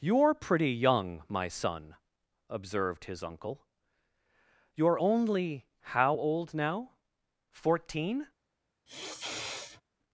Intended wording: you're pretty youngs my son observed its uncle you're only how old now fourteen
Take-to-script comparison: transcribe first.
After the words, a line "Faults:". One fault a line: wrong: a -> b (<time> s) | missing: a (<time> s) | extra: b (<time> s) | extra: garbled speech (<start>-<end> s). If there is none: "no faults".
you're pretty young my son observed his uncle you're only how old now fourteen
Faults:
wrong: youngs -> young (0.7 s)
wrong: its -> his (3.0 s)